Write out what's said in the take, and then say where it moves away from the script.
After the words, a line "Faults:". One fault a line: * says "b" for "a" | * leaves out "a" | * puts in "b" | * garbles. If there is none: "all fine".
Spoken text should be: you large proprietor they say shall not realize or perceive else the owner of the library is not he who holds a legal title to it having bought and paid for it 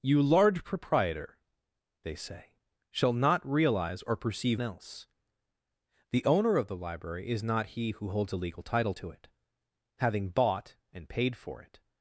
you large proprietor they say shall not realize or perceive else the owner of the library is not he who holds a legal title to it having bought and paid for it
Faults:
all fine